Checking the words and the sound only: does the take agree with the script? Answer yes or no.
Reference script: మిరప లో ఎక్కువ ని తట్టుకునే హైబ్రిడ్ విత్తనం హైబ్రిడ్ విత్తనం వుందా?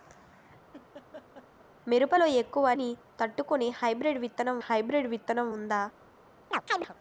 no